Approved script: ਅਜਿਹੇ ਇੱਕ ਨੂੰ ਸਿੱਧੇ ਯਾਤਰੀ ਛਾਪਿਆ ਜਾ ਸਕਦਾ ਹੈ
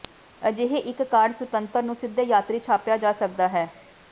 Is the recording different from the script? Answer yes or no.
yes